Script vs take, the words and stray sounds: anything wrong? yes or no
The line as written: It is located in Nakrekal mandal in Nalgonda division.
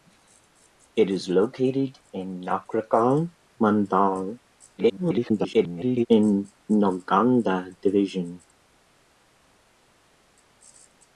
yes